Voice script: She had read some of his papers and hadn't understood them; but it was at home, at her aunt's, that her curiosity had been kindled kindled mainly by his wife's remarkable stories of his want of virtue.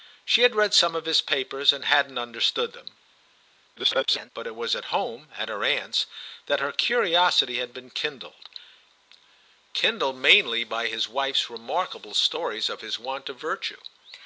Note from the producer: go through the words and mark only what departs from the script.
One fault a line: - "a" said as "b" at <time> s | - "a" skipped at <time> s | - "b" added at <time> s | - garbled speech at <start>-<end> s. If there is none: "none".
- garbled speech at 3.8-4.3 s